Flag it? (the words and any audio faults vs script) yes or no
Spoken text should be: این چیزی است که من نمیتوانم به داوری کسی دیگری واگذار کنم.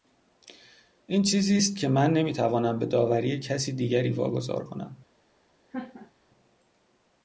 yes